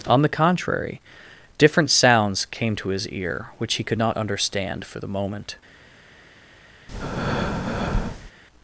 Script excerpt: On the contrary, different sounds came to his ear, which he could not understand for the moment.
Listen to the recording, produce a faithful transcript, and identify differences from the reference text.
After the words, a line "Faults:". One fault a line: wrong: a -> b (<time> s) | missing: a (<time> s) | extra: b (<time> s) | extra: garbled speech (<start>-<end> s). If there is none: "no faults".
On the contrary, different sounds came to his ear, which he could not understand for the moment.
Faults:
no faults